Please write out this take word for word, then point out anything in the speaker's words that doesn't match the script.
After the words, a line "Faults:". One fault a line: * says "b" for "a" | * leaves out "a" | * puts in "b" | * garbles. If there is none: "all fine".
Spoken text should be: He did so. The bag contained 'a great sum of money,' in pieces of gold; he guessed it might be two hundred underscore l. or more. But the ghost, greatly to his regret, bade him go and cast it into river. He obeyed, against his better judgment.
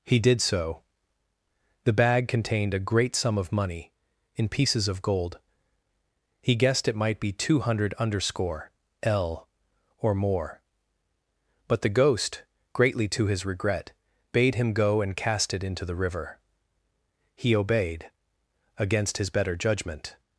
He did so. The bag contained 'a great sum of money,' in pieces of gold; he guessed it might be two hundred underscore l. or more. But the ghost, greatly to his regret, bade him go and cast it into the river. He obeyed, against his better judgment.
Faults:
* puts in "the"